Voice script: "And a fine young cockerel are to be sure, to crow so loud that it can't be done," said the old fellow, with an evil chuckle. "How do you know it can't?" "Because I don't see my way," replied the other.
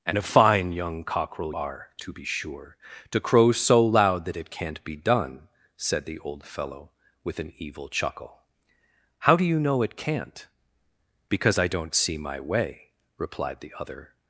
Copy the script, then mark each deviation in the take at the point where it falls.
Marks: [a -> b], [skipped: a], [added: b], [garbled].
"And a fine young cockerel are to be sure, to crow so loud that it can't be done," said the old fellow, with an evil chuckle. "How do you know it can't?" "Because I don't see my way," replied the other.